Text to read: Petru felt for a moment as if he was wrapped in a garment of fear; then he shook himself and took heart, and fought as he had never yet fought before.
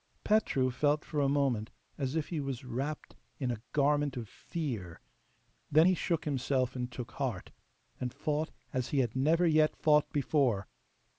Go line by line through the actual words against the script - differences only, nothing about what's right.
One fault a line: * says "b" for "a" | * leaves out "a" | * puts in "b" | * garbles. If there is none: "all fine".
all fine